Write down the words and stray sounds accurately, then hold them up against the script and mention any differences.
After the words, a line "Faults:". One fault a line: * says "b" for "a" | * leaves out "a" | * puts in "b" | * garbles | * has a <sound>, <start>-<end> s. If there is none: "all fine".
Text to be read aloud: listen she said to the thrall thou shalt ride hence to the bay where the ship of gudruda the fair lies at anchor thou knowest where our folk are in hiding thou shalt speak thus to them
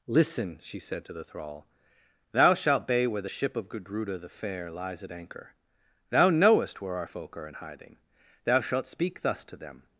listen she said to the thrall thou shalt bay where the ship of gudruda the fair lies at anchor thou knowest where our folk are in hiding thou shalt speak thus to them
Faults:
* leaves out "ride hence to the"